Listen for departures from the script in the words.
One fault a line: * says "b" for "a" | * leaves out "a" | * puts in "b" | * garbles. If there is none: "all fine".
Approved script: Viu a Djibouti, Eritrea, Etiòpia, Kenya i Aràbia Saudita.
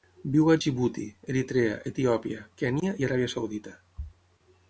all fine